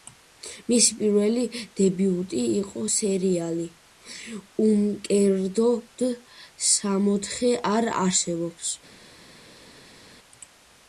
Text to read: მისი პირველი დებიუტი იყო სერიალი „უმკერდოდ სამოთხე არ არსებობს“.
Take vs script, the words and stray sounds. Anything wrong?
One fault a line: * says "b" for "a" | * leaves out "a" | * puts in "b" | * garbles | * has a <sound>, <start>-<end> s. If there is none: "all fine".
all fine